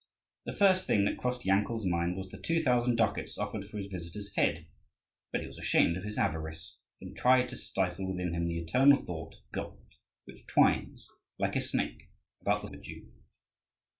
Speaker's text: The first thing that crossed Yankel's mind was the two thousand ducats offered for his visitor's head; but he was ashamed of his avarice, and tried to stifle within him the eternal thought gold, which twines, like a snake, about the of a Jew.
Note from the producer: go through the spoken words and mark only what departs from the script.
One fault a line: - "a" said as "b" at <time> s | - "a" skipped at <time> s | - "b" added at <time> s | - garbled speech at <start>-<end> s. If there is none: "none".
none